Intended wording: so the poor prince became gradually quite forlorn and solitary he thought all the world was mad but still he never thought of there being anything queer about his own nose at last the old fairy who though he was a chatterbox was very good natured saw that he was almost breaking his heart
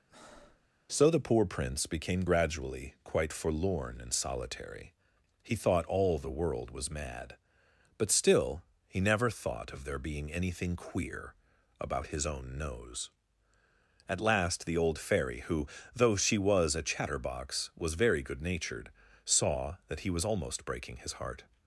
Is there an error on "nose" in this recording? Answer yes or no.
no